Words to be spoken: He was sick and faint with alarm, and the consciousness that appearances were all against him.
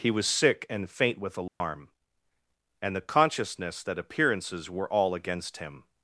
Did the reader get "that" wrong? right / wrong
right